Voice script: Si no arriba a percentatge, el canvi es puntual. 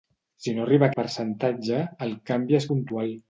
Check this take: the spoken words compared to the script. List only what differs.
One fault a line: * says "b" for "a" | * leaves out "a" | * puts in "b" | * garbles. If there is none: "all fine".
all fine